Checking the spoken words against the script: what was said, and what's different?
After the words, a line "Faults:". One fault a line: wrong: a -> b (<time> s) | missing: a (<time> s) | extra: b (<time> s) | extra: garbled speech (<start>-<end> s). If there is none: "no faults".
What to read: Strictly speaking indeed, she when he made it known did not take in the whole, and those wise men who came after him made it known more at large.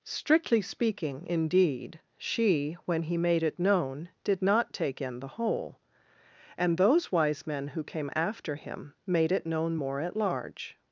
Strictly speaking indeed, she when he made it known did not take in the whole, and those wise men who came after him made it known more at large.
Faults:
no faults